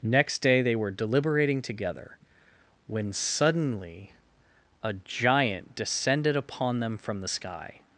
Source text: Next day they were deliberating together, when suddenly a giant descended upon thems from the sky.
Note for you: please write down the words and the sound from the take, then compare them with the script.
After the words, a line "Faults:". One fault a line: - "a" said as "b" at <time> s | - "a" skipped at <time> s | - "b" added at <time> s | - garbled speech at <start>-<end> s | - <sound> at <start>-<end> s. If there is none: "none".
Next day they were deliberating together, when suddenly a giant descended upon them from the sky.
Faults:
- "thems" said as "them" at 6.8 s